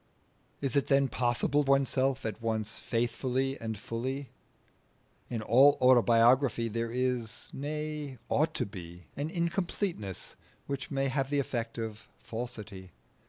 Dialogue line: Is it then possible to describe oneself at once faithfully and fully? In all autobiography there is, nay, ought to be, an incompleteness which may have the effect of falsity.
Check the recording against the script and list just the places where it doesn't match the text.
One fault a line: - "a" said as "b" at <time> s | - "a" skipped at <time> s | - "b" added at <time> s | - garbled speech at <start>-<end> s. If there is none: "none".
- "to describe" skipped at 1.6 s